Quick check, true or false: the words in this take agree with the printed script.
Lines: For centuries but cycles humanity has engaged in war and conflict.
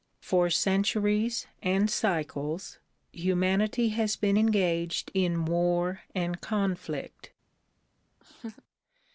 false